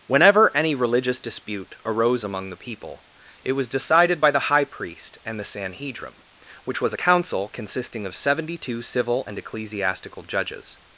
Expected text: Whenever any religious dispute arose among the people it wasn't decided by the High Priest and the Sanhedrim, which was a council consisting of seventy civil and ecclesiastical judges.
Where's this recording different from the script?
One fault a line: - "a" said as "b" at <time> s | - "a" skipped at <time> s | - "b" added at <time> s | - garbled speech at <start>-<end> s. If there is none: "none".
- "wasn't" said as "was" at 3.5 s
- "two" added at 8.6 s